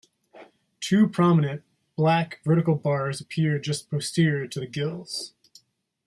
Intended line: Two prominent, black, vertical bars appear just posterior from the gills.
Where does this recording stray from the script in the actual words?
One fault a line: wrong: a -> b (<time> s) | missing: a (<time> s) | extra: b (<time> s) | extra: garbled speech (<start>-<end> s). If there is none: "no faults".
wrong: from -> to (4.5 s)